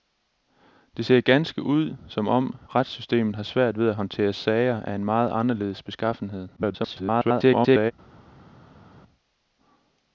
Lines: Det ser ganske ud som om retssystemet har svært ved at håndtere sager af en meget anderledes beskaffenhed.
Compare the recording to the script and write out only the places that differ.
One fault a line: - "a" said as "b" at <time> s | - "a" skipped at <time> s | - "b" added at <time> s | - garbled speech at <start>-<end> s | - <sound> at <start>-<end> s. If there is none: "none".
- garbled speech at 6.6-7.9 s